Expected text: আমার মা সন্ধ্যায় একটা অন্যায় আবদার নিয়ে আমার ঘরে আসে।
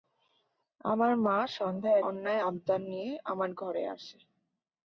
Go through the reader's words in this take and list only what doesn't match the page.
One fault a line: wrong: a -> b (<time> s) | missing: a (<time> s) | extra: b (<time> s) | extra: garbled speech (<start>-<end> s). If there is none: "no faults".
missing: একটা (2.0 s)